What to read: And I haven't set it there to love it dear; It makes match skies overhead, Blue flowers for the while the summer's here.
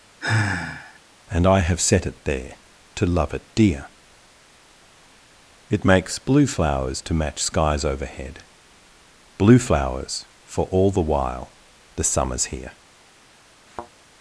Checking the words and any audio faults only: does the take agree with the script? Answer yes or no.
no